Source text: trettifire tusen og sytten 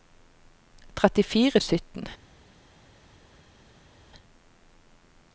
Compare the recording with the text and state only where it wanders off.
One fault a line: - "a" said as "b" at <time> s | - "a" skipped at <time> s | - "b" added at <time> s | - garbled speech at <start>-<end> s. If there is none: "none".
- "tusen og" skipped at 1.6 s